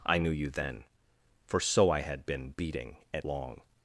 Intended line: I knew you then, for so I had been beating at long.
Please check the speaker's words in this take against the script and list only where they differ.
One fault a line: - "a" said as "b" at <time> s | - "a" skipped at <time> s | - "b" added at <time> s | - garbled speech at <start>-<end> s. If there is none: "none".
none